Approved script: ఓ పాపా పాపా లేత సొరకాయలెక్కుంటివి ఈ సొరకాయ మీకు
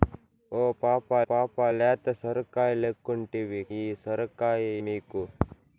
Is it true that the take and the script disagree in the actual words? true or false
false